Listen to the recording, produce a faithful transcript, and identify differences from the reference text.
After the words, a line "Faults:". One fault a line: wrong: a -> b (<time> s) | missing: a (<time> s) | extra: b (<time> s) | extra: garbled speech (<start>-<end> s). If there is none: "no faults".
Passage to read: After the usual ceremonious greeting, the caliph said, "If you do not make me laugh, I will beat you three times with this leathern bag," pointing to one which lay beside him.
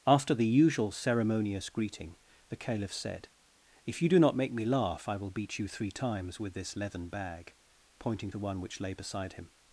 After the usual ceremonious greeting, the caliph said, "If you do not make me laugh, I will beat you three times with this leathern bag," pointing to one which lay beside him.
Faults:
no faults